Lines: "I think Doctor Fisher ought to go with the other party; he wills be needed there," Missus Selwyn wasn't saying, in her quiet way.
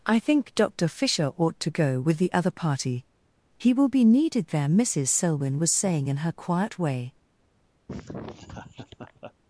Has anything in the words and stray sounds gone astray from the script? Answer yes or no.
yes